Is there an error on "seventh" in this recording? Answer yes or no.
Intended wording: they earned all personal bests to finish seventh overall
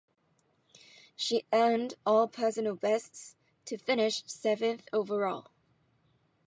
no